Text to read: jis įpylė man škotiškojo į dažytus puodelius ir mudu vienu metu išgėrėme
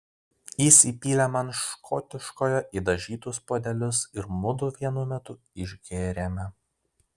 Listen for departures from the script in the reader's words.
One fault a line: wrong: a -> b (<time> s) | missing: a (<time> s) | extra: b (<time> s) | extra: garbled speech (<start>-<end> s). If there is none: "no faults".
no faults